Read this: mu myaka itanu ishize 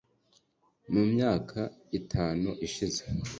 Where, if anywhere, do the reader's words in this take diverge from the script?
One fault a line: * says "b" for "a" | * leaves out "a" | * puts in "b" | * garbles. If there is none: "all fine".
all fine